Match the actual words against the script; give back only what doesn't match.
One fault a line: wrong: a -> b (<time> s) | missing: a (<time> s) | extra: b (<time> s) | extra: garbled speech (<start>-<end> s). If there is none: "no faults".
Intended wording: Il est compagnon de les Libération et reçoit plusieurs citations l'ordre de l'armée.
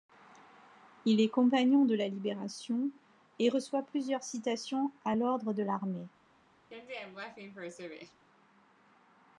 wrong: les -> la (1.9 s)
extra: à (5.0 s)